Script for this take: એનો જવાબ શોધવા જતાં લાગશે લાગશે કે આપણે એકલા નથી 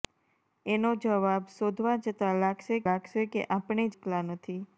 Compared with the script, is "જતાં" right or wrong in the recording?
right